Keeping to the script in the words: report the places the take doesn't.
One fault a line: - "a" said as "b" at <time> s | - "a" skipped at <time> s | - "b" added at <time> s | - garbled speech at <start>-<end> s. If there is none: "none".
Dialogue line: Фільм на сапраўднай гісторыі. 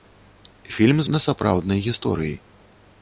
none